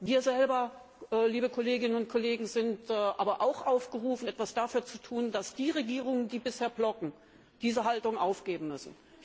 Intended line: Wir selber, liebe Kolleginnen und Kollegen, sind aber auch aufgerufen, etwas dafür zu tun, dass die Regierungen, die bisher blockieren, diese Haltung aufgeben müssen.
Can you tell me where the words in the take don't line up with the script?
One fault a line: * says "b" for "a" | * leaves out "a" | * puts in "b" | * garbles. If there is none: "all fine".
all fine